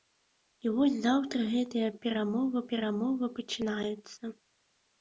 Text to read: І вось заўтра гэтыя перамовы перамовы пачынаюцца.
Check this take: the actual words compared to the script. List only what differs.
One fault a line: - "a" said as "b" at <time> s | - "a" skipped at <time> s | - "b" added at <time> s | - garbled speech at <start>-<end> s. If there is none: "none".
none